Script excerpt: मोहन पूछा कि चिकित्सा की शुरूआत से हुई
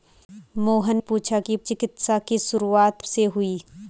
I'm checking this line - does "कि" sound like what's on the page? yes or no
yes